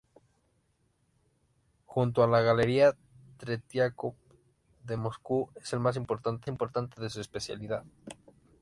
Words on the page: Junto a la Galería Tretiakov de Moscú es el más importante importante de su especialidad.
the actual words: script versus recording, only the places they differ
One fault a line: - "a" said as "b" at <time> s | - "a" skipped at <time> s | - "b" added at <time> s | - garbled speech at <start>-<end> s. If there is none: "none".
none